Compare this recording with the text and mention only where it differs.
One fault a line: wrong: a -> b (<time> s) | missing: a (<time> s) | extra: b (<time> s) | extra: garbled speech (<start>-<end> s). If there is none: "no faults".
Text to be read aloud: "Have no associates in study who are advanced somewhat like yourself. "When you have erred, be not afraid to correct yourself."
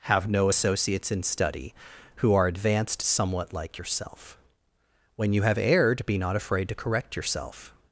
no faults